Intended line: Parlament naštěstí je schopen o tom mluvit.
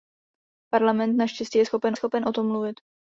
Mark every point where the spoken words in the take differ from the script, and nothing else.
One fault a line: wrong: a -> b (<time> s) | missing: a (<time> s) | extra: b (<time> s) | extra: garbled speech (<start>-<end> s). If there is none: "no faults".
extra: schopen (1.9 s)